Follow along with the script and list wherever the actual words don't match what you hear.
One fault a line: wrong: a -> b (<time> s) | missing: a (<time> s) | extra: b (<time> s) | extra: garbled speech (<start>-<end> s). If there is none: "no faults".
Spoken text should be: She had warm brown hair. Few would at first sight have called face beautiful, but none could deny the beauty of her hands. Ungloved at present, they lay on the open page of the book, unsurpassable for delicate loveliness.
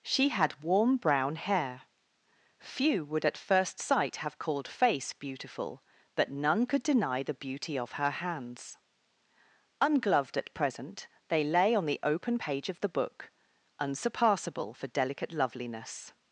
no faults